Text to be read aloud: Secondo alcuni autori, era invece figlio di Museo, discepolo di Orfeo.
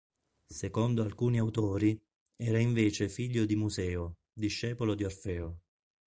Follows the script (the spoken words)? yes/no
yes